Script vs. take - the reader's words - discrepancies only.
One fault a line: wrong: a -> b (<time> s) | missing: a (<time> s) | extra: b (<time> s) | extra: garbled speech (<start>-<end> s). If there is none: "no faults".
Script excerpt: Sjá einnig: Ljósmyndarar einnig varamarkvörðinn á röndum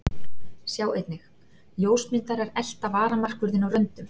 wrong: einnig -> elta (2.6 s)